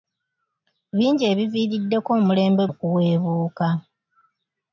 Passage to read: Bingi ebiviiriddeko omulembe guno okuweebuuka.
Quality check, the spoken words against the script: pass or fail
fail